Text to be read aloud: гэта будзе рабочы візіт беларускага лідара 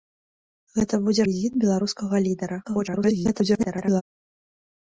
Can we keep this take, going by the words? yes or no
no